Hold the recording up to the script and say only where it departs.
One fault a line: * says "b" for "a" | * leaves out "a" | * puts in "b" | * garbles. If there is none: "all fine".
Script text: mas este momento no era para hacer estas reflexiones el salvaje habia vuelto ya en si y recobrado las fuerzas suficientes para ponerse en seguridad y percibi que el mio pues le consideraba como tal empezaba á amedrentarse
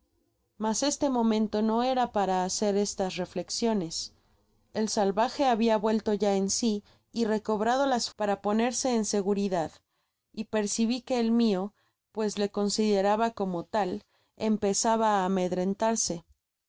* leaves out "fuerzas suficientes"